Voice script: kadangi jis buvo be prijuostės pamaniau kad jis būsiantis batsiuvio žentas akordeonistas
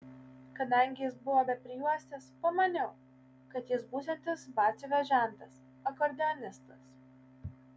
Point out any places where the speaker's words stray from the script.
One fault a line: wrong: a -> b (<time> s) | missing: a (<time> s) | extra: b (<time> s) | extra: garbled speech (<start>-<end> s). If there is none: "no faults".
no faults